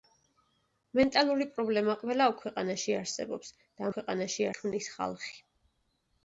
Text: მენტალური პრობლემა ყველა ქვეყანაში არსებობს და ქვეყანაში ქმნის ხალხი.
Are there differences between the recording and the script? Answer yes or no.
no